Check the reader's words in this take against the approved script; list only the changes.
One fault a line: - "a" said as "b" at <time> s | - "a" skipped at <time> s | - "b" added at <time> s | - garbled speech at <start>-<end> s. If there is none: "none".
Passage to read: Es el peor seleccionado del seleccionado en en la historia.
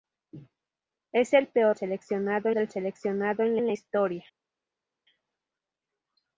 none